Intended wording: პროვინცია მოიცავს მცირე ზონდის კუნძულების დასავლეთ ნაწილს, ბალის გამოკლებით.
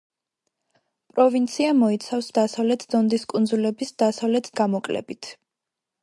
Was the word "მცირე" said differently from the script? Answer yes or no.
yes